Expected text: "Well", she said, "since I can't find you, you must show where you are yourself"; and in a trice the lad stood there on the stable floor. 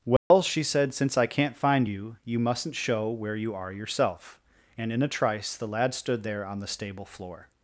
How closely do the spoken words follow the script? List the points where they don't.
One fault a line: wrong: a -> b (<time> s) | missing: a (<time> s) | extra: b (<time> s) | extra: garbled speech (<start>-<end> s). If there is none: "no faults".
wrong: must -> mustn't (2.4 s)